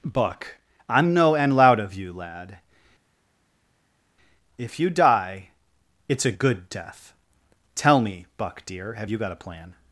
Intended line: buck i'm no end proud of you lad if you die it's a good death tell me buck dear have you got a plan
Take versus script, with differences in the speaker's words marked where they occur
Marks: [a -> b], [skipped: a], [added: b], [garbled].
buck i'm no end [proud -> loud] of you lad if you die it's a good death tell me buck dear have you got a plan